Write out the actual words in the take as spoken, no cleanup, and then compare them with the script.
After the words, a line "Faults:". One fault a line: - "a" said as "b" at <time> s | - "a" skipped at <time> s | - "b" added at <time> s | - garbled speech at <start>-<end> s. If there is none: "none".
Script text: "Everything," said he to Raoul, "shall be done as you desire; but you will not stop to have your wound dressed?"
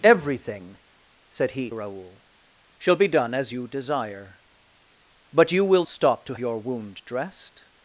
"Everything," said he Raoul, "shall be done as you desire; but you will stop to your wound dressed?"
Faults:
- "to" skipped at 1.7 s
- "not" skipped at 5.8 s
- "have" skipped at 6.3 s